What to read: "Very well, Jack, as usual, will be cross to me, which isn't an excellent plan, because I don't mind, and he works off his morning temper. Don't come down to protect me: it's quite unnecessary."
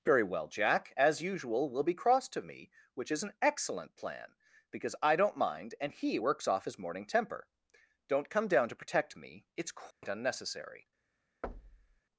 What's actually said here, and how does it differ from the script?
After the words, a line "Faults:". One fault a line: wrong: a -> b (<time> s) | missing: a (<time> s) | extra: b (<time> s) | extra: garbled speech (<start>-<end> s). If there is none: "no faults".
"Very well, Jack, as usual, will be cross to me, which is an excellent plan, because I don't mind, and he works off his morning temper. Don't come down to protect me: it's quite unnecessary."
Faults:
wrong: isn't -> is (3.1 s)